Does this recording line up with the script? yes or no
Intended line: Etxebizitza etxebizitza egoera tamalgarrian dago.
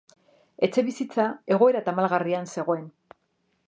no